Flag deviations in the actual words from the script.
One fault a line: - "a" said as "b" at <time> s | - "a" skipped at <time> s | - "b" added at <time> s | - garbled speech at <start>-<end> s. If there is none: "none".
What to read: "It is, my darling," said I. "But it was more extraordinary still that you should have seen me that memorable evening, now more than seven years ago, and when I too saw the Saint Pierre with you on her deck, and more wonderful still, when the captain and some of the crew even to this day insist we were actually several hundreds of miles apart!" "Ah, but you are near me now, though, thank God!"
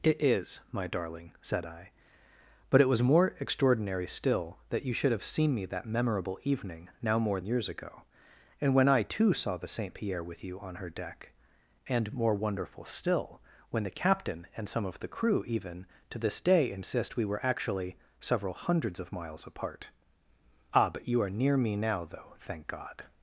- "than seven" skipped at 7.4 s